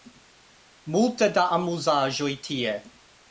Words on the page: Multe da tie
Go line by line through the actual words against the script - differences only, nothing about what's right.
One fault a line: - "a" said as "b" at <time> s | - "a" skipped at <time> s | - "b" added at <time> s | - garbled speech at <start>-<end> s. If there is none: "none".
- "amuzaĵoj" added at 1.6 s